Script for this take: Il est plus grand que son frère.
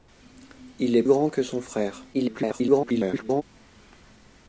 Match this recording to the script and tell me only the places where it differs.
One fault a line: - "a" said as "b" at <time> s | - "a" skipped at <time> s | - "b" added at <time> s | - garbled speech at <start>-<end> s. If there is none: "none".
- "plus" skipped at 1.0 s
- garbled speech at 2.1-3.4 s